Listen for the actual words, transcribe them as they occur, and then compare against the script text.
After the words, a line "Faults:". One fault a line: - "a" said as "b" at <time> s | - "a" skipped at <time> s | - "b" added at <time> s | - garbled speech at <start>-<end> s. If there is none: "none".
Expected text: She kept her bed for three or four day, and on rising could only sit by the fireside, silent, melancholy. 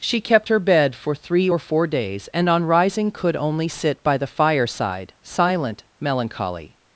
She kept her bed for three or four days, and on rising could only sit by the fireside, silent, melancholy.
Faults:
- "day" said as "days" at 1.9 s